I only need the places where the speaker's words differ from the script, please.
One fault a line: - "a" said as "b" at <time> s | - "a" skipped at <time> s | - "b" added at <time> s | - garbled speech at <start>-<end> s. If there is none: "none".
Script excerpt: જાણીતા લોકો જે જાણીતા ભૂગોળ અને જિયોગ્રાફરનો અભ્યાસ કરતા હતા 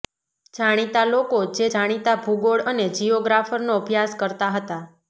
none